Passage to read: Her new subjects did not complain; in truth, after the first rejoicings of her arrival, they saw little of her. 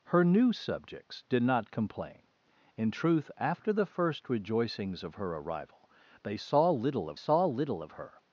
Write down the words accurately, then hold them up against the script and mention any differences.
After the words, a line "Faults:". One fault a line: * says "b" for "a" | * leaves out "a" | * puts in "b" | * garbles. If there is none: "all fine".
Her new subjects did not complain; in truth, after the first rejoicings of her arrival, they saw little of saw little of her.
Faults:
* puts in "saw little of"